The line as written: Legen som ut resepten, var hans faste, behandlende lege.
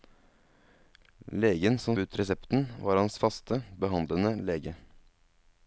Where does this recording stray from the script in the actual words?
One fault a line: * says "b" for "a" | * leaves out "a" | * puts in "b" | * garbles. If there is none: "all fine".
all fine